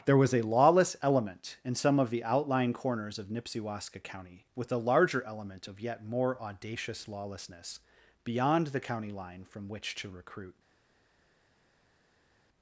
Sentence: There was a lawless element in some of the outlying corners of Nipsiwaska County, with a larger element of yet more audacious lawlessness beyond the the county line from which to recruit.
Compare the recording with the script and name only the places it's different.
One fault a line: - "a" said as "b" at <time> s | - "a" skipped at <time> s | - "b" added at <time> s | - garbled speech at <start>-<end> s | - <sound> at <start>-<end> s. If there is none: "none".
- "the" skipped at 8.8 s